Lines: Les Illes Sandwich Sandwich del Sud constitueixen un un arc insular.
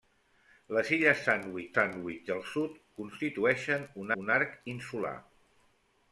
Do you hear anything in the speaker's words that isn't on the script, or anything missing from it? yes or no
no